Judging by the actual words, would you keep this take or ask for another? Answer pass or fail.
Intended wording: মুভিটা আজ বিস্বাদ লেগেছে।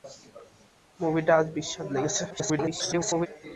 fail